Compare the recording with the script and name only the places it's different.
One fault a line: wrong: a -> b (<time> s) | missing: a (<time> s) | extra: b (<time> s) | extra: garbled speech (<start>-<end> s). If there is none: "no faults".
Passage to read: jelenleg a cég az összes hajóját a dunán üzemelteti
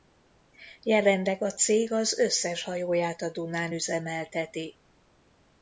no faults